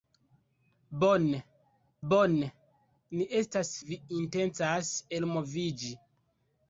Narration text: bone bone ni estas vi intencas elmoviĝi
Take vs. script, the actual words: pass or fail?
pass